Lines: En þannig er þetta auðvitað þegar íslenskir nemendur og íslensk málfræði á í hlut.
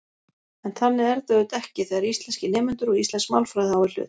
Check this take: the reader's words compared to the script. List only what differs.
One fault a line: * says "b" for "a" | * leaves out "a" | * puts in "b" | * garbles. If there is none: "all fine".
* puts in "ekki"